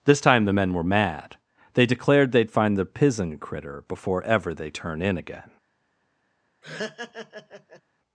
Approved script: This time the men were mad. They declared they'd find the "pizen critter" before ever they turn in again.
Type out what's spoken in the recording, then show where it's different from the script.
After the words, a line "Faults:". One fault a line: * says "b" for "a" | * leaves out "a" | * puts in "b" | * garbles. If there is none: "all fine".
This time the men were mad. They declared they'd find the "pizen critter" before ever they turn in again.
Faults:
all fine